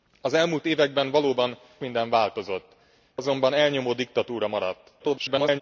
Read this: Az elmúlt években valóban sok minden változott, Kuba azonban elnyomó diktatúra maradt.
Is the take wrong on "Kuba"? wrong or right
wrong